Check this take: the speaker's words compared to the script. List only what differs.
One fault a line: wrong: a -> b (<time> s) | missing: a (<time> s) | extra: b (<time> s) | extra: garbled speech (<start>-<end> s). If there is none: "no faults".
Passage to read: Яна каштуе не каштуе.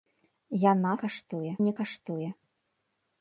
no faults